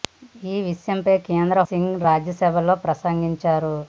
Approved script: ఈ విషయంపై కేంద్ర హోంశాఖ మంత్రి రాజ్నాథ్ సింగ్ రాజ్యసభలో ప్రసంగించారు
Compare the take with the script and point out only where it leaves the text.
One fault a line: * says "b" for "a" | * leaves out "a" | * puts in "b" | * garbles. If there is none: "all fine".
* leaves out "హోంశాఖ మంత్రి రాజ్నాథ్"